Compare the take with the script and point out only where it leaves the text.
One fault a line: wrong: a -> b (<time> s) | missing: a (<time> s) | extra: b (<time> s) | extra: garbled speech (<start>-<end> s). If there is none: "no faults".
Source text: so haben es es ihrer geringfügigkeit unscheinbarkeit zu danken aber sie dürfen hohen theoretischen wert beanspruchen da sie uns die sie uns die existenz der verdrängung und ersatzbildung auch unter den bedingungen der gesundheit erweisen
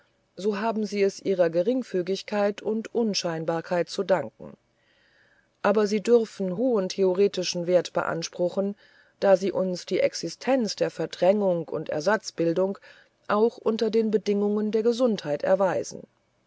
wrong: es -> sie (0.8 s)
extra: und (2.6 s)
missing: sie uns die (10.0 s)